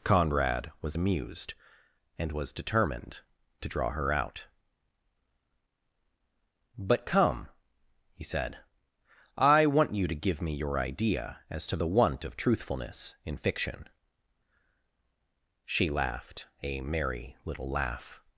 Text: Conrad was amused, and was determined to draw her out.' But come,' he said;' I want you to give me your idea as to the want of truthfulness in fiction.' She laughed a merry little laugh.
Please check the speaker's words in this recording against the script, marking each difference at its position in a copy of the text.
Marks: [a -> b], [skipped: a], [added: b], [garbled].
Conrad was amused, and was determined to draw her out.' But come,' he said;' I want you to give me your idea as to the want of truthfulness in fiction.' She laughed a merry little laugh.